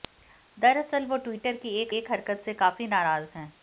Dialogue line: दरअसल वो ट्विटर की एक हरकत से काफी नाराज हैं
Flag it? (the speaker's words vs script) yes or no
yes